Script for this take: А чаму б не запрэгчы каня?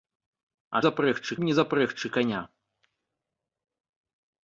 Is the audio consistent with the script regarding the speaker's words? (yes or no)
no